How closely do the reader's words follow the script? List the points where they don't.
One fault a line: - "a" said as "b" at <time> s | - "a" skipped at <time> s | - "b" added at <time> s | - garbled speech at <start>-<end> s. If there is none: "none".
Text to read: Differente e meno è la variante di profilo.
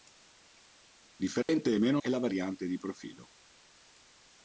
none